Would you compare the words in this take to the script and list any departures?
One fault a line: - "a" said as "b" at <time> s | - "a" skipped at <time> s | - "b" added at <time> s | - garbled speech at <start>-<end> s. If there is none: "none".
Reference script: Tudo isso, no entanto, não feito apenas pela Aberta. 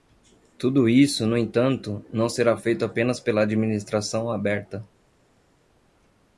- "será" added at 2.3 s
- "Administração" added at 3.4 s